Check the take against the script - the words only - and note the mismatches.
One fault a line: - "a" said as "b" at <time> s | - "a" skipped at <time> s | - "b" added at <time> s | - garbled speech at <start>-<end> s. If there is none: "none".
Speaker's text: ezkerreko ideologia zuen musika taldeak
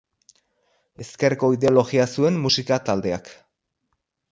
none